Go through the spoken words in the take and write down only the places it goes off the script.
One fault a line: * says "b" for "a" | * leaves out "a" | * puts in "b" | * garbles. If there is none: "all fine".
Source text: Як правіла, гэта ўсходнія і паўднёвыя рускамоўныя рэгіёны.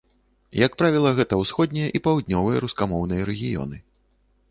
all fine